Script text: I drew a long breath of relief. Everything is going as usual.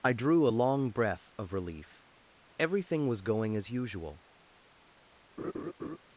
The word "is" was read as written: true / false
false